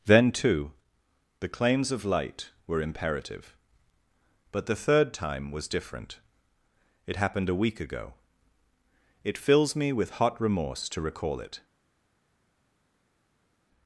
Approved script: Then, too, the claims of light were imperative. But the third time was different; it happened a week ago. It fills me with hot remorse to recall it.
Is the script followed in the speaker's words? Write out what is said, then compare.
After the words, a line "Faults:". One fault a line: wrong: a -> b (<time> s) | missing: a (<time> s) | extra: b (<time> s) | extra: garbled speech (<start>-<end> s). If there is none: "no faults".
Then, too, the claims of light were imperative. But the third time was different; it happened a week ago. It fills me with hot remorse to recall it.
Faults:
no faults